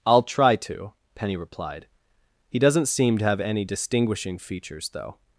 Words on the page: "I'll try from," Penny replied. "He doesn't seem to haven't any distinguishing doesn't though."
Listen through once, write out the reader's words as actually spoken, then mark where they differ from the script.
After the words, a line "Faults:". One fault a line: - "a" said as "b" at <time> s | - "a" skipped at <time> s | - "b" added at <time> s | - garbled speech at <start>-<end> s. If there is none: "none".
"I'll try to," Penny replied. "He doesn't seem to have any distinguishing features though."
Faults:
- "from" said as "to" at 0.6 s
- "haven't" said as "have" at 3.2 s
- "doesn't" said as "features" at 4.4 s